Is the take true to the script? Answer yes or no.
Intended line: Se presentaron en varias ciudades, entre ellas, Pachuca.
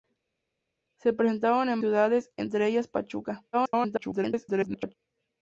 no